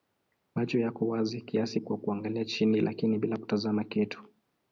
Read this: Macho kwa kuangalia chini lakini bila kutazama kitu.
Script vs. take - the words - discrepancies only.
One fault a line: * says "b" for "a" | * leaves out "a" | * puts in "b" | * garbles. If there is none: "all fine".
* puts in "yako wazi kiasi"